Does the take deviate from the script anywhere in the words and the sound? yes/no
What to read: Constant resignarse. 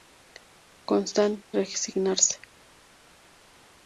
no